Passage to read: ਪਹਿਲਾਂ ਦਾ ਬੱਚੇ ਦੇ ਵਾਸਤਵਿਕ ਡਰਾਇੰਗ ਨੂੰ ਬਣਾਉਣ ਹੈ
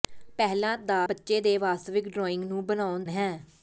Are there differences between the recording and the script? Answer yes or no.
no